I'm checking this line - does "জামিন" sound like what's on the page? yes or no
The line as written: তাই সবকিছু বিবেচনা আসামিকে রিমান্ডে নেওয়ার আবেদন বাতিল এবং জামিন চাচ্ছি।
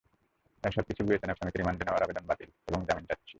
yes